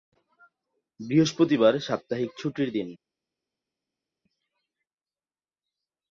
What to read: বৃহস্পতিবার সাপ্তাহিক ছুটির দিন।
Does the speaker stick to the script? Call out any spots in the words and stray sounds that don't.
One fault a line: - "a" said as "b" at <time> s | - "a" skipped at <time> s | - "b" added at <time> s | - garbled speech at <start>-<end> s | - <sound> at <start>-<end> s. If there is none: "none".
none